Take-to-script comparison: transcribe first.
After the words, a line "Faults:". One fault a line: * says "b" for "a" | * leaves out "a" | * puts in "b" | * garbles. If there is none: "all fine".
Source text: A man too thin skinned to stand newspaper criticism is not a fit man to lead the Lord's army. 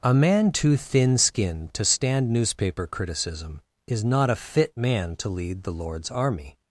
A man too thin skinned to stand newspaper criticism is not a fit man to lead the Lord's army.
Faults:
all fine